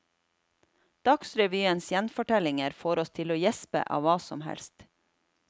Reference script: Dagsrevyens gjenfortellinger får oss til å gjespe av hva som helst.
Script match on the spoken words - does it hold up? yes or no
yes